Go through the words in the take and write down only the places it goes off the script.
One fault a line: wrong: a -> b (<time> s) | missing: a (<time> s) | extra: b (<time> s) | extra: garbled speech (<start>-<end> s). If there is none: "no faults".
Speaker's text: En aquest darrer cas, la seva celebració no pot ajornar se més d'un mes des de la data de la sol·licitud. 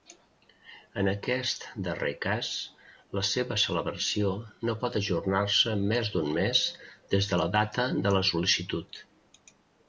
no faults